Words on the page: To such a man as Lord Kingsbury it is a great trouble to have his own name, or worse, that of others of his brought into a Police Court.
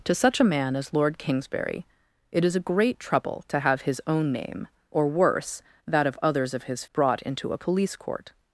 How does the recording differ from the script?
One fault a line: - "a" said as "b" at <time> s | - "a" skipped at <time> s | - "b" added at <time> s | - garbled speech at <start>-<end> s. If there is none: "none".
none